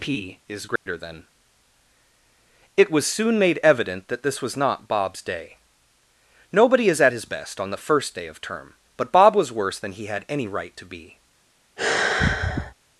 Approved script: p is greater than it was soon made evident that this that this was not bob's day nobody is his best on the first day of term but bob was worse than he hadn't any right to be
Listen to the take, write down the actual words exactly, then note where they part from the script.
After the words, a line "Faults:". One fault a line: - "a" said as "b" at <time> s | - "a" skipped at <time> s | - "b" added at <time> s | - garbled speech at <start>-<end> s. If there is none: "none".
p is greater than it was soon made evident that this was not bob's day nobody is at his best on the first day of term but bob was worse than he had any right to be
Faults:
- "that this" skipped at 4.4 s
- "at" added at 7.0 s
- "hadn't" said as "had" at 10.0 s